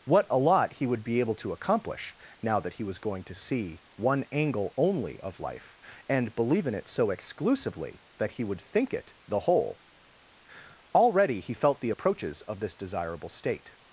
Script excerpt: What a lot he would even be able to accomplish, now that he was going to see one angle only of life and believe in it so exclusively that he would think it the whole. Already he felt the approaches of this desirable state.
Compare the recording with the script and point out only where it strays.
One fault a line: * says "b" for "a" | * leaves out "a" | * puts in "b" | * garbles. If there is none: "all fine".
* leaves out "even"